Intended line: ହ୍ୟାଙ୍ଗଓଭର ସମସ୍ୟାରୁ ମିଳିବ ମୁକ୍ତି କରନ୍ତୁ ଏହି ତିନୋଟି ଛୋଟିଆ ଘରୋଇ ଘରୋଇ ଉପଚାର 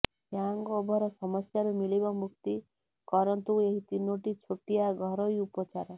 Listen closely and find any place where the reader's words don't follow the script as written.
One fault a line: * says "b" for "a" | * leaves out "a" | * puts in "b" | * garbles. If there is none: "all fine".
* leaves out "ଘରୋଇ"